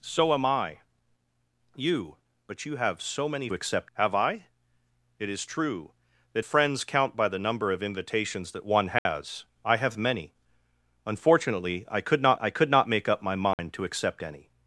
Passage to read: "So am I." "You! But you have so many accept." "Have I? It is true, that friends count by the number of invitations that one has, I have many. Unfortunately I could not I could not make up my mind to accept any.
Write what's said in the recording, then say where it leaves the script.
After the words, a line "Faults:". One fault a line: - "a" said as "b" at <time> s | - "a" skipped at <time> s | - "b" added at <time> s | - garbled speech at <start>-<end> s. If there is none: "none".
"So am I." "You! But you have so many accept." "Have I? It is true, that friends count by the number of invitations that one has, I have many. Unfortunately I could not I could not make up my mind to accept any.
Faults:
none